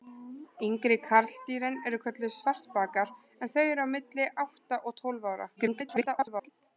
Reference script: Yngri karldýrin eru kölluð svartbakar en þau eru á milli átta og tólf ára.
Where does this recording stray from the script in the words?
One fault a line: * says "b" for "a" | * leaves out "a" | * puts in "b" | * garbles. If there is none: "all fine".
* garbles